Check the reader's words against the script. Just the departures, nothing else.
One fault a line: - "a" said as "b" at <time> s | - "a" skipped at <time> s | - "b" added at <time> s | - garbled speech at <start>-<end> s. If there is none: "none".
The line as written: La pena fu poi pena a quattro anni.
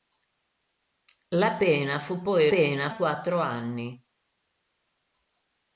none